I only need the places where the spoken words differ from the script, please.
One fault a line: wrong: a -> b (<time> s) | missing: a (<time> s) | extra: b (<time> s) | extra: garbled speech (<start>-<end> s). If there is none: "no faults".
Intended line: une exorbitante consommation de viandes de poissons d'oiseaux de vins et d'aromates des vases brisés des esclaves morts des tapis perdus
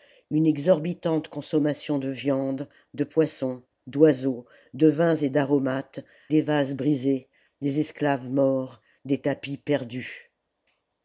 no faults